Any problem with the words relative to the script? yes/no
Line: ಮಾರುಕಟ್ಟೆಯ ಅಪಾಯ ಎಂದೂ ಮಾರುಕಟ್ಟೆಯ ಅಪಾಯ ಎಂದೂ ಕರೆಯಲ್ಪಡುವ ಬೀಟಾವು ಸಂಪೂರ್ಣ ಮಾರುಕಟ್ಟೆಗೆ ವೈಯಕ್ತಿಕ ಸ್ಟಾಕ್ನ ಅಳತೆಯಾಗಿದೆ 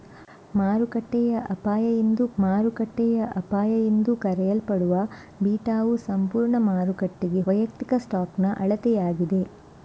no